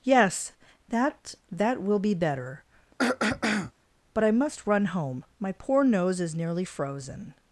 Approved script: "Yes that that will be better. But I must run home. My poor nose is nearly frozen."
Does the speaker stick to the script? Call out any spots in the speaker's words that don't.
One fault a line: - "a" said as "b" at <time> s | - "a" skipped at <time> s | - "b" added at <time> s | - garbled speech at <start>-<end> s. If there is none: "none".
none